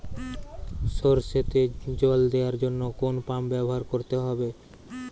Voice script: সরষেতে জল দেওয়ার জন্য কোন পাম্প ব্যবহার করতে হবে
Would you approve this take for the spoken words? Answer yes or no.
yes